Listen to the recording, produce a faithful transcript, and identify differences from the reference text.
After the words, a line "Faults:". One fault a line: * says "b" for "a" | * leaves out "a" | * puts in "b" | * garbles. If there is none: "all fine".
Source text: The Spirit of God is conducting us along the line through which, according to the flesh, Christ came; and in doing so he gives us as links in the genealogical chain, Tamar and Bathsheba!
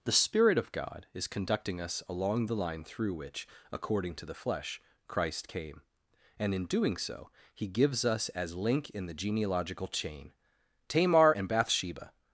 The Spirit of God is conducting us along the line through which, according to the flesh, Christ came; and in doing so he gives us as link in the genealogical chain, Tamar and Bathsheba!
Faults:
* says "link" for "links"